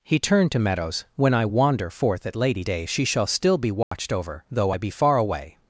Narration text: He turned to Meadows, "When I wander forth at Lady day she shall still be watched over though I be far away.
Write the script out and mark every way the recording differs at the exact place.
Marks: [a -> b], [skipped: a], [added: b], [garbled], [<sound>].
He turned to Meadows, "When I wander forth at Lady day she shall still be watched [dropout] over though I be far away.